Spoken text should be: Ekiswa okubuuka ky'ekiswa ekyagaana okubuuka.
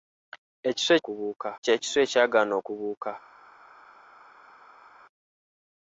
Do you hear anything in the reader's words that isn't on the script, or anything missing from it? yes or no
no